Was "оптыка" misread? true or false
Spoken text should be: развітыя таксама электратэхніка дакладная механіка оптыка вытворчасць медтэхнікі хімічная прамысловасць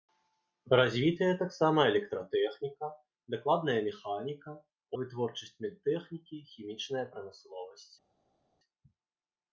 true